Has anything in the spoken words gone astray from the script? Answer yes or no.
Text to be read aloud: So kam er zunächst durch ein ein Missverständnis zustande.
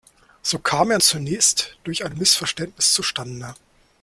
no